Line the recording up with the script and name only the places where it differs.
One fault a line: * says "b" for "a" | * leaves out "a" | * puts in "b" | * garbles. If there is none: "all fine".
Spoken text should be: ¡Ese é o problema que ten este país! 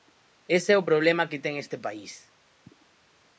all fine